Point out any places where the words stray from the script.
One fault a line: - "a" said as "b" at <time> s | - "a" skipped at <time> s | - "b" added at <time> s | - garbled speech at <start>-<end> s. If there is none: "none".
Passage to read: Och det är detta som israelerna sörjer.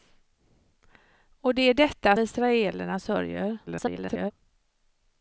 - "som" skipped at 2.2 s
- garbled speech at 3.7-4.3 s